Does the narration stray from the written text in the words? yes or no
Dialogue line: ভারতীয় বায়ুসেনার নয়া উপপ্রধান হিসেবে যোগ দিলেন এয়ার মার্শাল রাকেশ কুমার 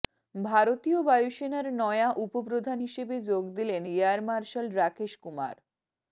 no